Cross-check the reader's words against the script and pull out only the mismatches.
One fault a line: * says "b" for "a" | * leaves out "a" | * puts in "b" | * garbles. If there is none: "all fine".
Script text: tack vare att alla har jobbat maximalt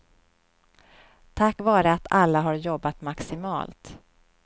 all fine